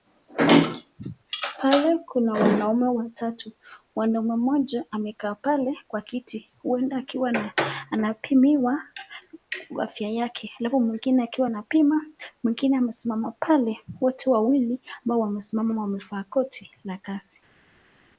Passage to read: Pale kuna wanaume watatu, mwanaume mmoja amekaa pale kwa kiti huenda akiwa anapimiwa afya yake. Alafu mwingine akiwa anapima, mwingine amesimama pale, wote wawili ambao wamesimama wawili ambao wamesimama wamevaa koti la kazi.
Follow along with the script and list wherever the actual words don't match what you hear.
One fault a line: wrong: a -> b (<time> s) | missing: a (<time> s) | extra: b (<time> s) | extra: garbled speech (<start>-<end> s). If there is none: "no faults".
missing: wawili ambao wamesimama (15.8 s)